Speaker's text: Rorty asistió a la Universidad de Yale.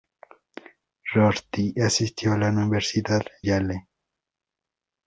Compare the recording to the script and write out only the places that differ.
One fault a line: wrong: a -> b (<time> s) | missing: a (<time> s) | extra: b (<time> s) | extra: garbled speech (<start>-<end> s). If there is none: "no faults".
missing: de (3.2 s)